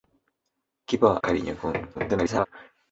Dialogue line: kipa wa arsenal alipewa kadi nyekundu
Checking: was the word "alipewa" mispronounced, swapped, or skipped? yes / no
yes